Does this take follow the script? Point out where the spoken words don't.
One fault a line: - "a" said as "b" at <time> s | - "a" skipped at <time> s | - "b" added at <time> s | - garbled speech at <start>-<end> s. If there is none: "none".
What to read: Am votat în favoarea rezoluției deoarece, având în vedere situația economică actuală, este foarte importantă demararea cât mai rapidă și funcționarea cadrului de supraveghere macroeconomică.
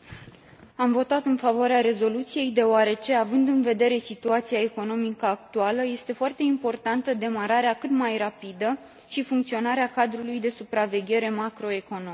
none